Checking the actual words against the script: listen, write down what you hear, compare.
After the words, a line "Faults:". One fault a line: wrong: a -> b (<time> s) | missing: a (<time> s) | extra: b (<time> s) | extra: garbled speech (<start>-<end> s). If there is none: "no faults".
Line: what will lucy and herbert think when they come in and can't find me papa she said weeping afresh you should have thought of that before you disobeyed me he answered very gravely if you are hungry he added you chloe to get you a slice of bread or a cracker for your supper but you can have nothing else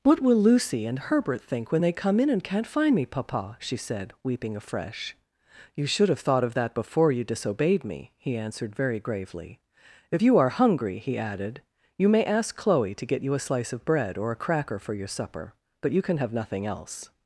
what will lucy and herbert think when they come in and can't find me papa she said weeping afresh you should have thought of that before you disobeyed me he answered very gravely if you are hungry he added you may ask chloe to get you a slice of bread or a cracker for your supper but you can have nothing else
Faults:
extra: may ask (12.1 s)